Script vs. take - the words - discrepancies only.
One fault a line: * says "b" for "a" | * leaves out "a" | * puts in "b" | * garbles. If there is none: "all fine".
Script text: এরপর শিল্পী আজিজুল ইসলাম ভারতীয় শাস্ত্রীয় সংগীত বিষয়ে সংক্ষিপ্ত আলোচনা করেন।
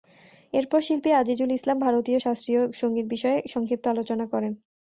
all fine